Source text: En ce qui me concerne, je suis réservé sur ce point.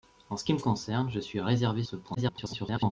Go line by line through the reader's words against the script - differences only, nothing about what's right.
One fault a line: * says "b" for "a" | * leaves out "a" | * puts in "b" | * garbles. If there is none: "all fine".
* leaves out "sur"
* garbles